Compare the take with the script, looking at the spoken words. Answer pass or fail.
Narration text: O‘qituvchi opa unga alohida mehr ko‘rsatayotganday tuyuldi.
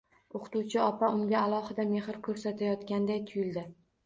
pass